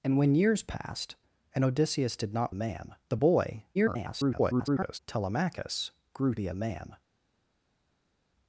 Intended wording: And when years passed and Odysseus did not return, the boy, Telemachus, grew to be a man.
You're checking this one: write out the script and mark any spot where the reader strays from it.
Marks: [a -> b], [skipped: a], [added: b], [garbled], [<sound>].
And when years passed and Odysseus did not [return, -> man] the boy, [garbled] Telemachus, grew [skipped: to] be a man.